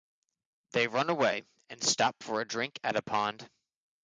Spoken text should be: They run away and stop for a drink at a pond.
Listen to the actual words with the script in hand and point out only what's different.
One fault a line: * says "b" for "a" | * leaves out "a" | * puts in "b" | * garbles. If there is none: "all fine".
all fine